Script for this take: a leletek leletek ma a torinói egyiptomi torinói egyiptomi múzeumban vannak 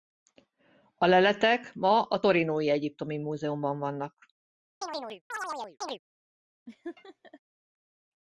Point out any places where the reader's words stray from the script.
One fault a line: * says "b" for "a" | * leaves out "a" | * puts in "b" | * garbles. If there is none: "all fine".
* leaves out "leletek"
* leaves out "torinói egyiptomi"